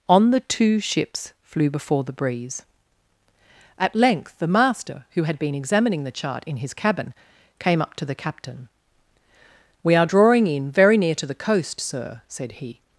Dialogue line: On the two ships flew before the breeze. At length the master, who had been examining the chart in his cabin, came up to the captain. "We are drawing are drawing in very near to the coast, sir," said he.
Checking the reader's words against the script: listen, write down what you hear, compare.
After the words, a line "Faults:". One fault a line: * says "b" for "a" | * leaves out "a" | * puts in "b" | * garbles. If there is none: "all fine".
On the two ships flew before the breeze. At length the master, who had been examining the chart in his cabin, came up to the captain. "We are drawing in very near to the coast, sir," said he.
Faults:
* leaves out "are drawing"